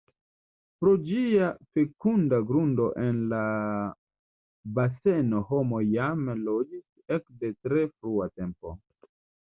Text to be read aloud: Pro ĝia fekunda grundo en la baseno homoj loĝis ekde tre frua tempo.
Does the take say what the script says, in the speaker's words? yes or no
no